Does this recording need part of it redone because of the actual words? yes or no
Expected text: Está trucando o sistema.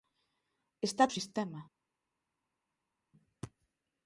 yes